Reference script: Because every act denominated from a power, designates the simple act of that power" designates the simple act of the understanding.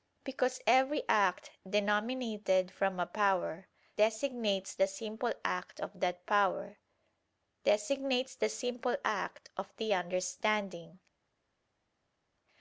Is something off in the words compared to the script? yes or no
no